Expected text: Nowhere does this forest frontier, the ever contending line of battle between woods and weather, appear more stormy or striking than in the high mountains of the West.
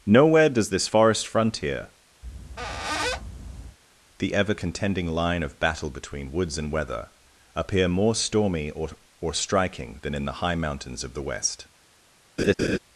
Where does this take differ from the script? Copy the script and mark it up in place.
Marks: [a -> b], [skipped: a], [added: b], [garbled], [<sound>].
Nowhere does this forest frontier, [squeak] the ever contending line of battle between woods and weather, appear more stormy or [added: or] striking than in the high mountains of the West. [laugh]